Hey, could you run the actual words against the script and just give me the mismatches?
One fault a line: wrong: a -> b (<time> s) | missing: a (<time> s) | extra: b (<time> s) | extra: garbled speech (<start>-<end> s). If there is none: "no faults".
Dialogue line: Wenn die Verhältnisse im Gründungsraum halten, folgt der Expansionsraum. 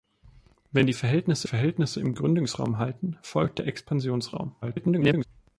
extra: Verhältnisse (1.4 s)
extra: garbled speech (4.6-5.2 s)